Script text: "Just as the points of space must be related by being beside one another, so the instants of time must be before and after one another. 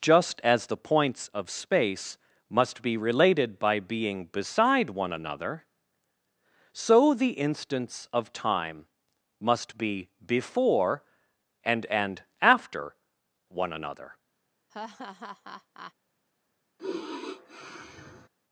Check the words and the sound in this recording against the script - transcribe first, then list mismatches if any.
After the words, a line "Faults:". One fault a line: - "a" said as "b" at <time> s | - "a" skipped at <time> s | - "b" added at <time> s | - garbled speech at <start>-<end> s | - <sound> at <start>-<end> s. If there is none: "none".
"Just as the points of space must be related by being beside one another, so the instants of time must be before and and after one another.
Faults:
- "and" added at 11.9 s
- laugh at 14.7-15.9 s
- sigh at 16.8-18.3 s